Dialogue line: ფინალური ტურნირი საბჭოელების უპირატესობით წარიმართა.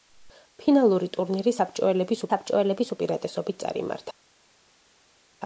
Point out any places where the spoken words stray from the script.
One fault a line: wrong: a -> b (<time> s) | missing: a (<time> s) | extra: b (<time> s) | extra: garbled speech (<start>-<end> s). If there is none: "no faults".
extra: საბჭოელების (2.3 s)